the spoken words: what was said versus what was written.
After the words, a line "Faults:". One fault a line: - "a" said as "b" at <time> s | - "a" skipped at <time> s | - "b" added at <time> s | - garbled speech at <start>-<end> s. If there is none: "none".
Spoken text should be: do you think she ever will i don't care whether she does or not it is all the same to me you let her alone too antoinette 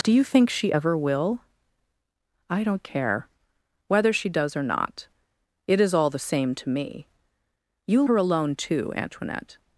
do you think she ever will i don't care whether she does or not it is all the same to me you her alone too antoinette
Faults:
- "let" skipped at 8.0 s